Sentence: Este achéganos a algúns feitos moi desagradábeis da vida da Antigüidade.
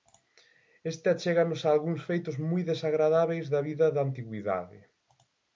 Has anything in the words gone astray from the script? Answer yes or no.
no